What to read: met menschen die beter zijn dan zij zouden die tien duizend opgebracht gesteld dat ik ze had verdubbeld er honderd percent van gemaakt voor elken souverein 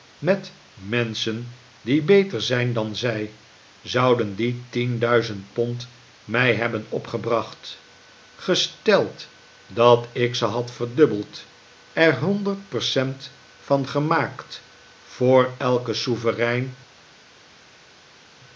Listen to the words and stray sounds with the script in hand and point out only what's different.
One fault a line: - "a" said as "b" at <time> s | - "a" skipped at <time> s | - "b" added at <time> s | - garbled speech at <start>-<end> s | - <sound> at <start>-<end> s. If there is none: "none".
- "pond mij hebben" added at 5.5 s